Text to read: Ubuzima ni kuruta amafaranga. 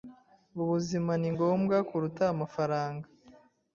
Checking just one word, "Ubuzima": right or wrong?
right